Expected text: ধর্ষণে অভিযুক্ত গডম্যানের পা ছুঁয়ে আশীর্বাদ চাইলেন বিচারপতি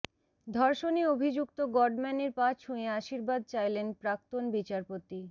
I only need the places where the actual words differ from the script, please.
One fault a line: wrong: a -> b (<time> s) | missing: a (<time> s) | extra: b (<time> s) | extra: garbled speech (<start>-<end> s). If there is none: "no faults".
extra: প্রাক্তন (4.0 s)